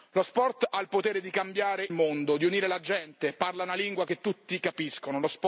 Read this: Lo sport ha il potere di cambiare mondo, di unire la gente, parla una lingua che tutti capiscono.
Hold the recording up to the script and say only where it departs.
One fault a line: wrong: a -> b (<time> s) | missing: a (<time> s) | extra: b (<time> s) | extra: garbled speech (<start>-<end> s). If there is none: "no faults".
no faults